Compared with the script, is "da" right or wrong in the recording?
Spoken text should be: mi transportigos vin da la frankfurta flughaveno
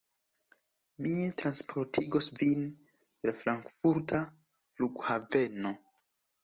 wrong